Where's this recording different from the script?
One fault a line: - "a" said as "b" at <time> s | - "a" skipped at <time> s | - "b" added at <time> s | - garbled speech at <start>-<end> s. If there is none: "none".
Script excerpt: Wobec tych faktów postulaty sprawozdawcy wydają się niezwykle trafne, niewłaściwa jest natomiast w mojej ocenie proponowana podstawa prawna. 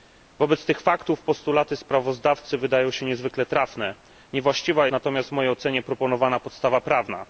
- "jest" skipped at 4.9 s